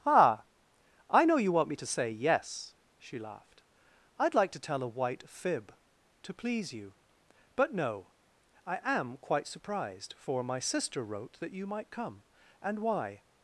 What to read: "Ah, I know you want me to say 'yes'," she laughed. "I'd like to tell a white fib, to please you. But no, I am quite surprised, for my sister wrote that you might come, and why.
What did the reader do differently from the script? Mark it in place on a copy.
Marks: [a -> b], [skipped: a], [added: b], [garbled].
"Ah, I know you want me to say 'yes'," she laughed. "I'd like to tell a white fib, to please you. But no, I am quite surprised, for my sister wrote that you might come, and why.